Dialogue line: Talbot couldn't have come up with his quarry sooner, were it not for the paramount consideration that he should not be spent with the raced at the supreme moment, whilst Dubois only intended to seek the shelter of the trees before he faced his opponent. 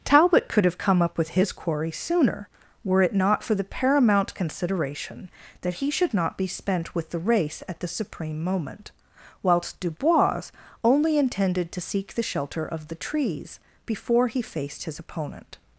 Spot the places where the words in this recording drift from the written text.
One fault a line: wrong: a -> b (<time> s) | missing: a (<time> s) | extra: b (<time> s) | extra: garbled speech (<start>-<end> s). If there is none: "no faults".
wrong: couldn't -> could (0.5 s)
wrong: raced -> race (7.2 s)